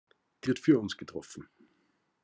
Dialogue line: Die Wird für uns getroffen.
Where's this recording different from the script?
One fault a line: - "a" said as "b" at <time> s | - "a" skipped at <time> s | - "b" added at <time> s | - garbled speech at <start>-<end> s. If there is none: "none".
none